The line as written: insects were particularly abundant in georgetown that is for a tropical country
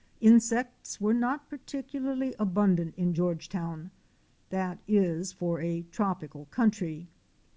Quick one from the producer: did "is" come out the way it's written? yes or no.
yes